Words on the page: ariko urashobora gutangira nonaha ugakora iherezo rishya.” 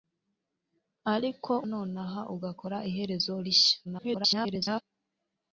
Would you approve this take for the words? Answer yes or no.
no